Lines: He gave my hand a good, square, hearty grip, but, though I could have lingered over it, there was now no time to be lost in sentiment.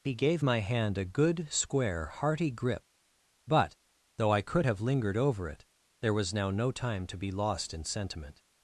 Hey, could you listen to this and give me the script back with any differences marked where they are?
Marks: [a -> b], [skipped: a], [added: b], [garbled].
He gave my hand a good, square, hearty grip, but, though I could have lingered over it, there was now no time to be lost in sentiment.